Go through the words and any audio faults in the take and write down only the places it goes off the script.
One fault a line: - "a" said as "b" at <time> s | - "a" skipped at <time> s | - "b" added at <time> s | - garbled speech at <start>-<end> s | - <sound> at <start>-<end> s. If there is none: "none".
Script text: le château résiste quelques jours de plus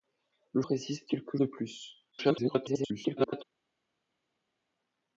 - "château" skipped at 0.6 s
- "jours" skipped at 1.4 s
- garbled speech at 2.1-3.4 s